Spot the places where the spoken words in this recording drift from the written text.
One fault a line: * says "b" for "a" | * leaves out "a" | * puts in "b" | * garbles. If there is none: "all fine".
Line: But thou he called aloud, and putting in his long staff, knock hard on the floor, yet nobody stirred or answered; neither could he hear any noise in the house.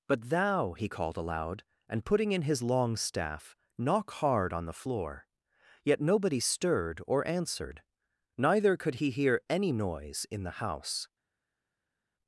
all fine